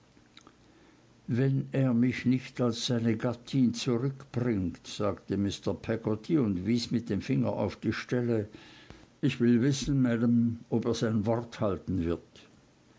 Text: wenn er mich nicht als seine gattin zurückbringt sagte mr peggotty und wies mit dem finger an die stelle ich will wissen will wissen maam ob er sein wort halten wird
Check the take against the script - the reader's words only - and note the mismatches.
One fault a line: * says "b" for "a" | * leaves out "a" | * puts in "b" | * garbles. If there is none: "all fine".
* says "auf" for "an"
* leaves out "will wissen"